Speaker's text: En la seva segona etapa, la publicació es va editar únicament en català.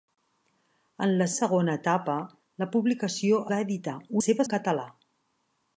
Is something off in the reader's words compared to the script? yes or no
yes